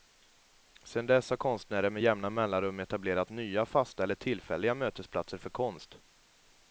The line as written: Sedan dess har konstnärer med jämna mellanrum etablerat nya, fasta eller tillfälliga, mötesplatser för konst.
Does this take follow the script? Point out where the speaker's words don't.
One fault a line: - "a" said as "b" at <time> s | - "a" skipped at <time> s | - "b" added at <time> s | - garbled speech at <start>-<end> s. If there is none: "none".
none